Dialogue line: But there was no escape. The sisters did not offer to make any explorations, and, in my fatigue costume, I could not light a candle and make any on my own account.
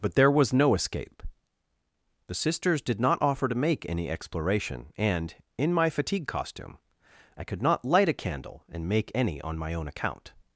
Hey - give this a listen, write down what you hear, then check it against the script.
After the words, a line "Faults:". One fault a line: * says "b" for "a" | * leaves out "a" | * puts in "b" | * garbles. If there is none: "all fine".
But there was no escape. The sisters did not offer to make any exploration, and, in my fatigue costume, I could not light a candle and make any on my own account.
Faults:
* says "exploration" for "explorations"